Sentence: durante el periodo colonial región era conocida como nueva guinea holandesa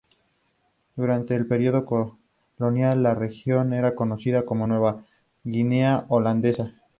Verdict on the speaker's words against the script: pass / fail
fail